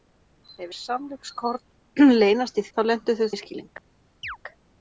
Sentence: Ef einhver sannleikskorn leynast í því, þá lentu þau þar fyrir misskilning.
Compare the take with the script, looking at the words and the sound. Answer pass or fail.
fail